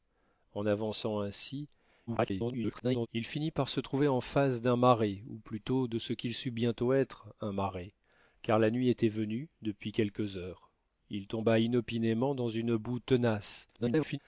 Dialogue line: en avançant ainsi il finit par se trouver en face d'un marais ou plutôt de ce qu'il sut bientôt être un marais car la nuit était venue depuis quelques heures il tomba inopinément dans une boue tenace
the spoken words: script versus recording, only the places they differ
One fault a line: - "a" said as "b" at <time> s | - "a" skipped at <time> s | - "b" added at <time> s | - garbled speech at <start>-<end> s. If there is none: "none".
- garbled speech at 2.1-3.1 s
- garbled speech at 13.7-14.2 s